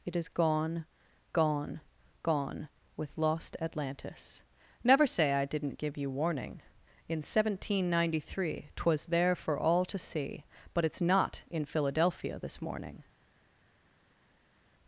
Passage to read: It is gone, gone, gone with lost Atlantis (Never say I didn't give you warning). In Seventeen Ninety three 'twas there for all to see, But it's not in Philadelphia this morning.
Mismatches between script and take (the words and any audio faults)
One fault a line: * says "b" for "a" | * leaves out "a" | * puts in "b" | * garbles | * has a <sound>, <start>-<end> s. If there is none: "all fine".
all fine